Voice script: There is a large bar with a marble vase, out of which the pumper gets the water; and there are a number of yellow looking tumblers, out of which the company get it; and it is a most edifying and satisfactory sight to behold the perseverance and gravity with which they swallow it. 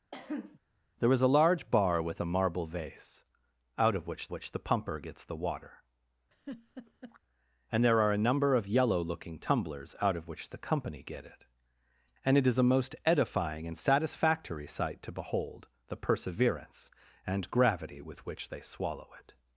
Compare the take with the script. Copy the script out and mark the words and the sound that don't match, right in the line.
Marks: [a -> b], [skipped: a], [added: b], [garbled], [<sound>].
[cough] There is a large bar with a marble vase, out of which [added: which] the pumper gets the water; [laugh] and there are a number of yellow looking tumblers, out of which the company get it; and it is a most edifying and satisfactory sight to behold the perseverance and gravity with which they swallow it.